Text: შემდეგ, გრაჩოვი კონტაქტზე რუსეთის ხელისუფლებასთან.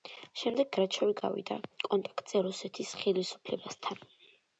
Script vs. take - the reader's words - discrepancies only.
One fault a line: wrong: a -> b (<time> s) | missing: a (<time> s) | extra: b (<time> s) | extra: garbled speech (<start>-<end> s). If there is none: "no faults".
extra: გავიდა (1.2 s)